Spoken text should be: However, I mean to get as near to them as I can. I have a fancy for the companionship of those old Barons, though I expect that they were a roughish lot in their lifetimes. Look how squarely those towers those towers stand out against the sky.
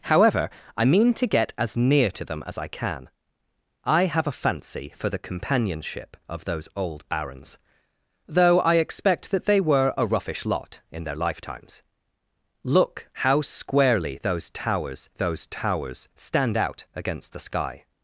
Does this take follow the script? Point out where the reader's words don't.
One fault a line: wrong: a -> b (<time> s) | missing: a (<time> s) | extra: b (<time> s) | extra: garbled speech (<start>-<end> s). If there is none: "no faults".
no faults